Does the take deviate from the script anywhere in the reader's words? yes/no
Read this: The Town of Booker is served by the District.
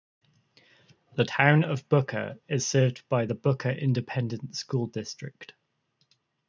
yes